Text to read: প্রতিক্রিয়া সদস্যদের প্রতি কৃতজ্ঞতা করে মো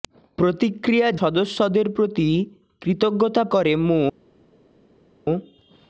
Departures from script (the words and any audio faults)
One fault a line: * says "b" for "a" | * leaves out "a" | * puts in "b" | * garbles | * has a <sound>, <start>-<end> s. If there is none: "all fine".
all fine